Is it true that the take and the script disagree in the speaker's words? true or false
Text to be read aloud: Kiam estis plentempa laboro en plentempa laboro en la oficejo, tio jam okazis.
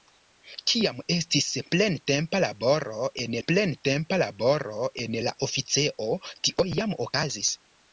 false